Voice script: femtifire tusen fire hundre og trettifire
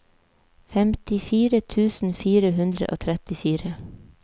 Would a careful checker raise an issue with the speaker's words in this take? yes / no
no